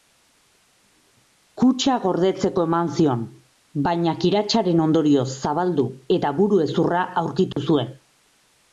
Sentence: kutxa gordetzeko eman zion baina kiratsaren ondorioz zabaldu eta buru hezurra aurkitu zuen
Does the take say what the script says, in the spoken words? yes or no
yes